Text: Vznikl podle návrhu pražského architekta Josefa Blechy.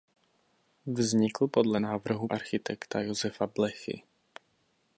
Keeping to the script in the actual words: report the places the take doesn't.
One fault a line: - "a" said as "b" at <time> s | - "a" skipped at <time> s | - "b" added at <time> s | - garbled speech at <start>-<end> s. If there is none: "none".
- "pražského" skipped at 2.3 s